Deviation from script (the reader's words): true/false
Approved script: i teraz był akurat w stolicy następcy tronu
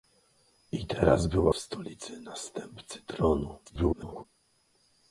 true